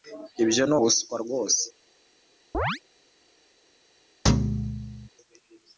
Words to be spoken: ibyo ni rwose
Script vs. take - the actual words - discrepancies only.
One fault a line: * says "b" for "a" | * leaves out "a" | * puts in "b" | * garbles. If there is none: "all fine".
* puts in "ubuswa"